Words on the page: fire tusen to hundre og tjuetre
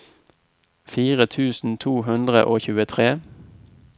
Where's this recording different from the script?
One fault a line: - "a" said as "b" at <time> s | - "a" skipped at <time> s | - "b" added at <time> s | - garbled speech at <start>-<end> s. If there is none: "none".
none